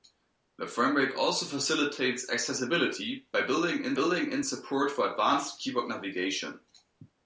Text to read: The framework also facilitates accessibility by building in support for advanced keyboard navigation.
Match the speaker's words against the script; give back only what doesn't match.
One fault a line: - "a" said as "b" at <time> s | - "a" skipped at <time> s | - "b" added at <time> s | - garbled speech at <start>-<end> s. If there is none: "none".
- "building in" added at 3.9 s